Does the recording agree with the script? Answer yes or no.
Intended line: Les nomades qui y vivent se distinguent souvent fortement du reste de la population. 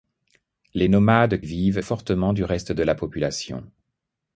no